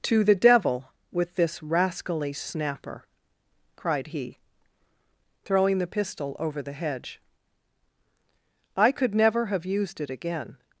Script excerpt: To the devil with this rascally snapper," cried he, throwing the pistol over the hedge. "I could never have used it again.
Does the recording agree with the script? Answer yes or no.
yes